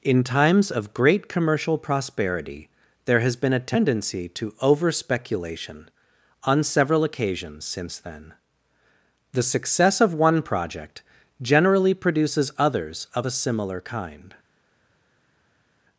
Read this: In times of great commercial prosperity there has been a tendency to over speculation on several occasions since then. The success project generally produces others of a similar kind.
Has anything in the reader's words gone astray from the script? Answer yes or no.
yes